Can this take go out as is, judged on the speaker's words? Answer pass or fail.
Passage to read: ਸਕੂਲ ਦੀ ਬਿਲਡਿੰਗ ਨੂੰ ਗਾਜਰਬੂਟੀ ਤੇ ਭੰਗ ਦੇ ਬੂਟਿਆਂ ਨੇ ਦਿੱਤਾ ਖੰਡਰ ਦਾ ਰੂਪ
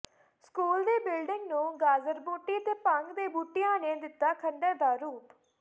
pass